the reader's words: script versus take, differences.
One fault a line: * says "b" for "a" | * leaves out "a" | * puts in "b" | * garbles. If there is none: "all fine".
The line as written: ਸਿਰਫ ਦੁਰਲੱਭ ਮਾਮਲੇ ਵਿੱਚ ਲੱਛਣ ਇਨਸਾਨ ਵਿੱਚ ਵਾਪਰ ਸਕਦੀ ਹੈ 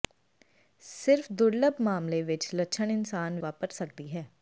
* leaves out "ਵਿੱਚ"